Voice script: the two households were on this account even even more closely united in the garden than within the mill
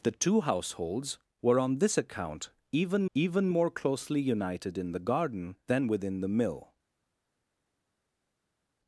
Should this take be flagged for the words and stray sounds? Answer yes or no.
no